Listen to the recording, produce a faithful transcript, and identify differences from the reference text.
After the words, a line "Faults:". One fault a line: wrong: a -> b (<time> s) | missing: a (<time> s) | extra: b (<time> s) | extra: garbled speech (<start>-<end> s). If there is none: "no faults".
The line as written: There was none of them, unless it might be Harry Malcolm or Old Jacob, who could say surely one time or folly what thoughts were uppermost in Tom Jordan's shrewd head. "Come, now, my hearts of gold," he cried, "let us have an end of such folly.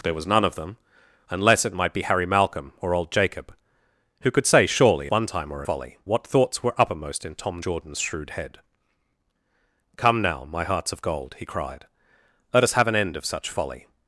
There was none of them, unless it might be Harry Malcolm or Old Jacob, who could say surely one time or folly what thoughts were uppermost in Tom Jordan's shrewd head. "Come, now, my hearts of gold," he cried, "let us have an end of such folly.
Faults:
no faults